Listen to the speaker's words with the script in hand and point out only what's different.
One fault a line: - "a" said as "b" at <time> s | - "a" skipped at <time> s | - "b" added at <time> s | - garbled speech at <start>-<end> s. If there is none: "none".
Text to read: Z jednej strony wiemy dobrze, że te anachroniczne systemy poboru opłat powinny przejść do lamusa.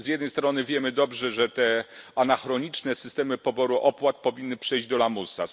none